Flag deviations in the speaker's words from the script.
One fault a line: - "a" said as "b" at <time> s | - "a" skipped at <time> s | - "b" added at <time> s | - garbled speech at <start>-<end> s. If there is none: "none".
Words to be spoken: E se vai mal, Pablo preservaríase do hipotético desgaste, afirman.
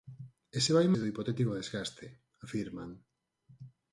- "mal Pablo preservaríase" skipped at 0.9 s